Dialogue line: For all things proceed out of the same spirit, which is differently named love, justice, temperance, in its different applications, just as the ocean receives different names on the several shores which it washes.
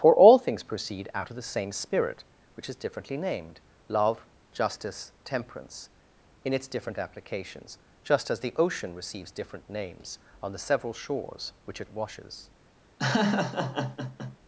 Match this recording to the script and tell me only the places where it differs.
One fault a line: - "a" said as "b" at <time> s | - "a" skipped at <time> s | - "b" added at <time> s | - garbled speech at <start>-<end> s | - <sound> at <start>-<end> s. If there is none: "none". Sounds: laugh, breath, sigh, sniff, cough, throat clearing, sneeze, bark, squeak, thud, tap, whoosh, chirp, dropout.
- laugh at 13.0-14.4 s